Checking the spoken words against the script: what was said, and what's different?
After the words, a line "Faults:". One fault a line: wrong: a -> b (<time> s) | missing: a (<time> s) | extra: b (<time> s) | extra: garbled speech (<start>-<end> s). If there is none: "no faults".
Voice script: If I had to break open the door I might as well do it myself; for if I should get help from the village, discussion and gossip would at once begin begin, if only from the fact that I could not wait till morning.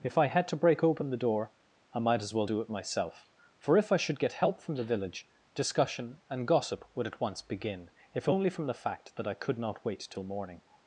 If I had to break open the door I might as well do it myself; for if I should get help from the village, discussion and gossip would at once begin, if only from the fact that I could not wait till morning.
Faults:
missing: begin (7.9 s)